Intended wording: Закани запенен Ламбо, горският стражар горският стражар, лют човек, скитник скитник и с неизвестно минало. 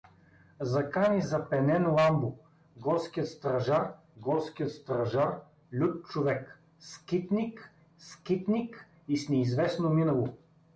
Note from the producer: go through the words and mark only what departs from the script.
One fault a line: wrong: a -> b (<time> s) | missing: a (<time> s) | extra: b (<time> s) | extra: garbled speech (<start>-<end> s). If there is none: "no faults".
no faults